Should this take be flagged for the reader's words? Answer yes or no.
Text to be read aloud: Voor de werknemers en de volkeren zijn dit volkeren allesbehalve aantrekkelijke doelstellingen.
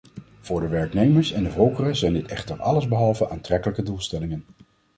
yes